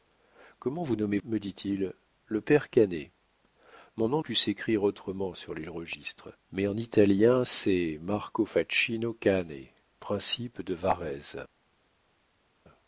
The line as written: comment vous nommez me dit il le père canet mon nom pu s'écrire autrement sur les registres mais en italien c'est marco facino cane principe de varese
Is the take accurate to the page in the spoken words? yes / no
yes